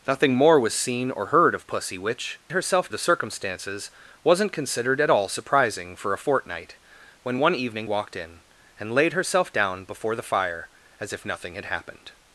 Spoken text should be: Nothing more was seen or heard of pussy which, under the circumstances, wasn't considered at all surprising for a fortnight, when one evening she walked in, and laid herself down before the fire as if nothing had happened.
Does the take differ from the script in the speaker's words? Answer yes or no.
yes